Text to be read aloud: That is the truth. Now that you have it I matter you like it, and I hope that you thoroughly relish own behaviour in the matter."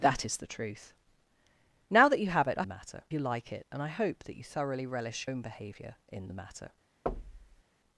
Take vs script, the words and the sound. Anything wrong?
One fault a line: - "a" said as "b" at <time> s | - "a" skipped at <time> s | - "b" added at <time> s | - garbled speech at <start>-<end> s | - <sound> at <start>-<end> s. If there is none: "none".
- thud at 7.1-7.6 s